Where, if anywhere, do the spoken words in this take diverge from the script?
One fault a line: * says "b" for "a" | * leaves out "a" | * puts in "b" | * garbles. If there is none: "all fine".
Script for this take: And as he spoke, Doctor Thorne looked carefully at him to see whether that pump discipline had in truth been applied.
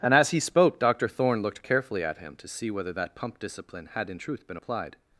all fine